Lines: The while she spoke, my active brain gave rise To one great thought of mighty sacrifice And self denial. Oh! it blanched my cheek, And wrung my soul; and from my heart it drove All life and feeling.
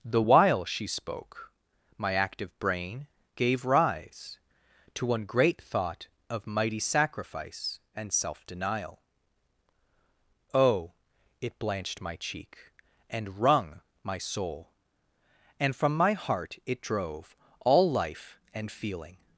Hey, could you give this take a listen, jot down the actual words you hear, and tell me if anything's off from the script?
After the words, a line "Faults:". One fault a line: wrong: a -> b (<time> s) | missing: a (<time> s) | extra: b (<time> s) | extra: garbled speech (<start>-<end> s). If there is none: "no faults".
The while she spoke, my active brain gave rise To one great thought of mighty sacrifice And self denial. Oh! it blanched my cheek, And wrung my soul; and from my heart it drove All life and feeling.
Faults:
no faults